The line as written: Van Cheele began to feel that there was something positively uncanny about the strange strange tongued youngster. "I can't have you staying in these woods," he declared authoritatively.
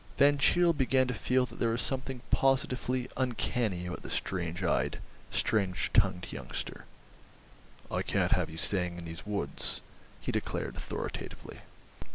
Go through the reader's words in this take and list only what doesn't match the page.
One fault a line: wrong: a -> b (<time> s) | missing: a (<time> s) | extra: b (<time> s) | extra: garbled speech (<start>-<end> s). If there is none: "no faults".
extra: eyed (4.6 s)